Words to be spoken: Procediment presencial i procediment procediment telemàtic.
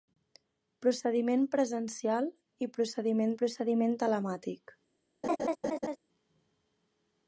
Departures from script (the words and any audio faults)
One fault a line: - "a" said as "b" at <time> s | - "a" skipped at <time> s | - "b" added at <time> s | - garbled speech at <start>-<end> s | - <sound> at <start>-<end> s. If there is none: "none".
- laugh at 5.2-6.0 s